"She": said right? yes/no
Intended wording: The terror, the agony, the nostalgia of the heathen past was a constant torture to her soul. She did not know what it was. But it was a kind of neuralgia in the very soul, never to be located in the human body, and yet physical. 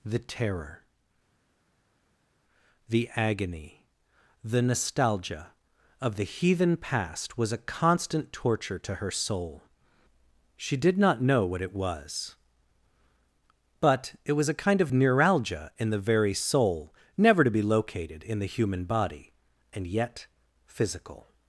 yes